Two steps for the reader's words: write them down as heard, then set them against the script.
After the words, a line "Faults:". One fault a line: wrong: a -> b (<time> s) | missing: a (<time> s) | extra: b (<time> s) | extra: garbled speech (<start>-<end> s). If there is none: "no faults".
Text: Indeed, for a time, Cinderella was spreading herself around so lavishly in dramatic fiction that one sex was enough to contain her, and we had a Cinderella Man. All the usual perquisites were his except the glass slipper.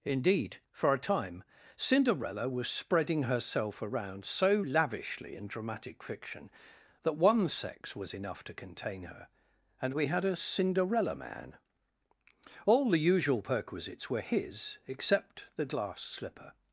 Indeed, for a time, Cinderella was spreading herself around so lavishly in dramatic fiction that one sex was enough to contain her, and we had a Cinderella Man. All the usual perquisites were his except the glass slipper.
Faults:
no faults